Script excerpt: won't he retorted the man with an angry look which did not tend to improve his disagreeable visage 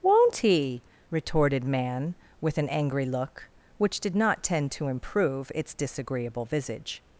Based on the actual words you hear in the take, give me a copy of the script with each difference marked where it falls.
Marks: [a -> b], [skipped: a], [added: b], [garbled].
won't he retorted [skipped: the] man with an angry look which did not tend to improve [his -> its] disagreeable visage